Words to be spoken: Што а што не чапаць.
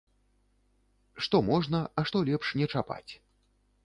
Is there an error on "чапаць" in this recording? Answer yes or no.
no